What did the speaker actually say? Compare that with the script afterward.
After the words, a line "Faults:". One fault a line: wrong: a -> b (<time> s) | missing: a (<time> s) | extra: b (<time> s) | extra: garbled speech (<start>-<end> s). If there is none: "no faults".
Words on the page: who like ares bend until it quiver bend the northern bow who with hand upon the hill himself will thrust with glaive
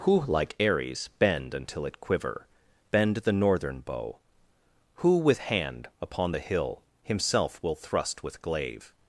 who like ares bend until it quiver bend the northern bow who with hand upon the hill himself will thrust with glaive
Faults:
no faults